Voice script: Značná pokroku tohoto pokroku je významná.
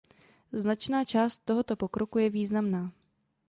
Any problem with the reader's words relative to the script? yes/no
yes